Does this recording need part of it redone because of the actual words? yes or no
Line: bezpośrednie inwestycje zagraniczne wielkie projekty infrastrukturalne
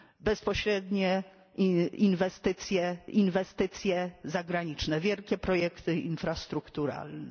yes